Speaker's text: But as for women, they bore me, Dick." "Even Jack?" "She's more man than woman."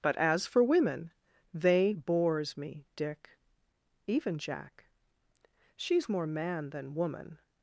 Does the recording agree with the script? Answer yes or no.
no